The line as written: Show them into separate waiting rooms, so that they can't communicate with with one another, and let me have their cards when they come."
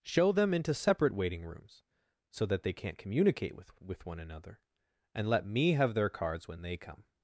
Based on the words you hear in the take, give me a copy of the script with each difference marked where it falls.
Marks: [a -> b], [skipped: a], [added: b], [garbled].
Show them into separate waiting rooms, so that they can't communicate with with one another, and let me have their cards when they come."